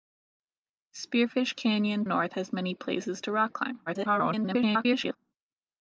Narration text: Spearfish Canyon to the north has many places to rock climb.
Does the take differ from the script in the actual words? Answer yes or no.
yes